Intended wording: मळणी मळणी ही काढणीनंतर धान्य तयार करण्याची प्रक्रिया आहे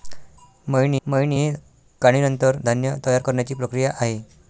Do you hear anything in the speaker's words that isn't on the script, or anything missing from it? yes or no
no